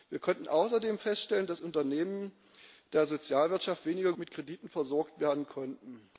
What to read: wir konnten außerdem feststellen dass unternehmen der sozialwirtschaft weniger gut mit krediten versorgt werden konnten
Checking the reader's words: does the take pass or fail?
fail